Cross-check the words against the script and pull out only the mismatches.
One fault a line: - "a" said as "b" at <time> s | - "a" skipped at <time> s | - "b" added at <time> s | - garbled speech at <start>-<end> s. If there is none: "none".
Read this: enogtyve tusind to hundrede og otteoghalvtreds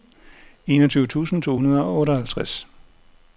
none